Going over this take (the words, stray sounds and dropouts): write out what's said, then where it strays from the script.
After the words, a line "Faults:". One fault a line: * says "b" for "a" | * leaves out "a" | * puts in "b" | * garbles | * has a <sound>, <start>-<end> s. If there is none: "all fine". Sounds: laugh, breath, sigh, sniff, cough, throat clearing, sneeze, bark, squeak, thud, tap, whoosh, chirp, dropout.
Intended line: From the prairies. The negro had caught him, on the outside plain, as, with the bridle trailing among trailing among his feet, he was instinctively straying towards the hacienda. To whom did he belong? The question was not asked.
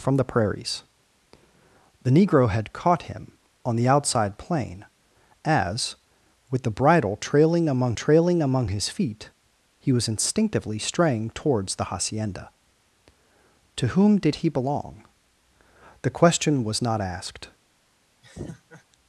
From the prairies. The negro had caught him, on the outside plain, as, with the bridle trailing among trailing among his feet, he was instinctively straying towards the hacienda. To whom did he belong? The question was not asked.
Faults:
* has a laugh, 18.2-18.8 s